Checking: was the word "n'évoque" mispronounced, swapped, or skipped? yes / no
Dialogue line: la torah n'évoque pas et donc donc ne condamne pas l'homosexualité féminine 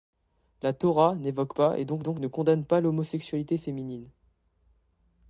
no